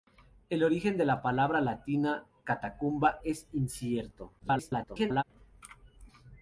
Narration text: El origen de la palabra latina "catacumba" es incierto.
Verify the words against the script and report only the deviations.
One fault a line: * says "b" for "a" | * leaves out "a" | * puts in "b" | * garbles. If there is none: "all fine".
* garbles